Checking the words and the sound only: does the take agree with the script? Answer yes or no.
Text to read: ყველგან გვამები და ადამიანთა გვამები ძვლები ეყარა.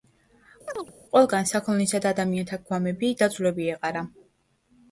no